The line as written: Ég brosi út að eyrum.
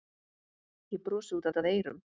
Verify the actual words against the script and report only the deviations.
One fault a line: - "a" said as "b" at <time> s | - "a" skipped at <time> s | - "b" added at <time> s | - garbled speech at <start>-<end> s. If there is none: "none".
- "út" added at 1.5 s